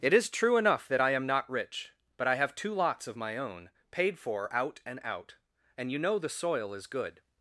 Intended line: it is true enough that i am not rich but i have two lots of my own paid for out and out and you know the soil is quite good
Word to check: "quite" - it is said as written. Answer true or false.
false